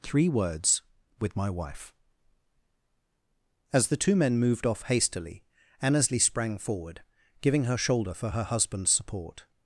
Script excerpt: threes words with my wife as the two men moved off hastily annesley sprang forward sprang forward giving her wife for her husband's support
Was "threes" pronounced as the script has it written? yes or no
no